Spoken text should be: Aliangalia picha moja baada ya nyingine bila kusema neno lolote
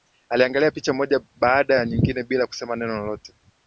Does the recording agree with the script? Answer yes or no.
yes